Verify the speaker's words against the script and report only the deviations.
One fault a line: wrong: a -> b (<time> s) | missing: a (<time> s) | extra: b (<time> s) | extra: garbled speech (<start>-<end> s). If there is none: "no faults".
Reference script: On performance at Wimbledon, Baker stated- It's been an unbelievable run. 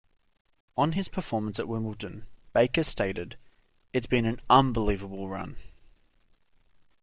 extra: his (0.9 s)